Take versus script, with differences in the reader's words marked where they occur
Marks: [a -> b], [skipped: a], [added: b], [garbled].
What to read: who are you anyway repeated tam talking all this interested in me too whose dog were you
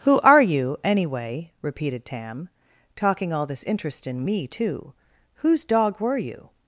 who are you anyway repeated tam talking all this [interested -> interest] in me too whose dog were you